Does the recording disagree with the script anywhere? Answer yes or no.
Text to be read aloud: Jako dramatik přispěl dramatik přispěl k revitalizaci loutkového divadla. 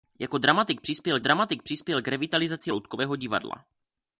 no